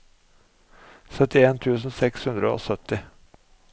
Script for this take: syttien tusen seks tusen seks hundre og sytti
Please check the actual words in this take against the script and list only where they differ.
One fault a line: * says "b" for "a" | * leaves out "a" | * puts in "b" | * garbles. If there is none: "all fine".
* leaves out "tusen seks"